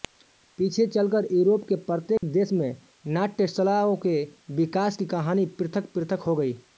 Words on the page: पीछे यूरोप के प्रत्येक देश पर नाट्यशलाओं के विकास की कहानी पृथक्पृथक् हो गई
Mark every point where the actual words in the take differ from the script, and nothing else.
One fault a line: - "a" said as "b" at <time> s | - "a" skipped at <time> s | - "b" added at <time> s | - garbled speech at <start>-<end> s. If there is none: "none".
- "चलकर" added at 0.9 s
- "पर" said as "में" at 2.5 s